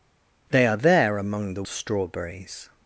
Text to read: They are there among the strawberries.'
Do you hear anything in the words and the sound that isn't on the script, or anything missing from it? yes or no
no